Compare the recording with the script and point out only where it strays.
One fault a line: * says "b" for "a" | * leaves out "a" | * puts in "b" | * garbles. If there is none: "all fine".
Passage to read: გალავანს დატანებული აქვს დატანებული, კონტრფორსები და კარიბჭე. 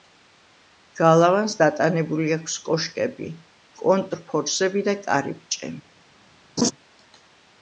* says "კოშკები" for "დატანებული"